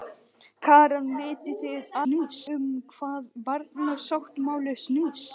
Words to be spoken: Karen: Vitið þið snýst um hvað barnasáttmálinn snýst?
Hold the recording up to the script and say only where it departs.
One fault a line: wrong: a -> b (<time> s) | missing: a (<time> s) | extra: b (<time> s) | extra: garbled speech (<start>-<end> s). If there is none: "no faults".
no faults